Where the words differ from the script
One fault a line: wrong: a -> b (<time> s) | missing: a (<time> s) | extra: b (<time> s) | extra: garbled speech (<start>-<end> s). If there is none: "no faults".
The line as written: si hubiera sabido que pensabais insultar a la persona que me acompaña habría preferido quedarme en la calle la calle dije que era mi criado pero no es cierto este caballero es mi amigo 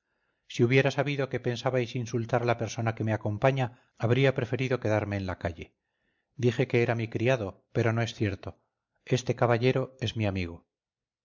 missing: la calle (5.8 s)